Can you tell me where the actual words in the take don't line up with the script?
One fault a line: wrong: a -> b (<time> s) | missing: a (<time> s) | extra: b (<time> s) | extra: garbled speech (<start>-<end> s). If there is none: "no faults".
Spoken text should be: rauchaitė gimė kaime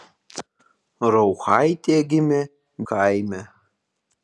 no faults